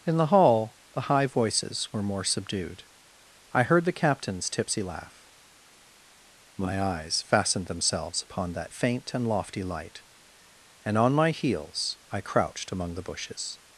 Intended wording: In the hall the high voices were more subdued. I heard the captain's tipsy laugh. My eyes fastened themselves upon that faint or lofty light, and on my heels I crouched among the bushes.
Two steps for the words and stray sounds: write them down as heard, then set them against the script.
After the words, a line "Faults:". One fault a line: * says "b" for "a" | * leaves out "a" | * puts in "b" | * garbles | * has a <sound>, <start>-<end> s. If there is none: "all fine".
In the hall the high voices were more subdued. I heard the captain's tipsy laugh. My eyes fastened themselves upon that faint and lofty light, and on my heels I crouched among the bushes.
Faults:
* says "and" for "or"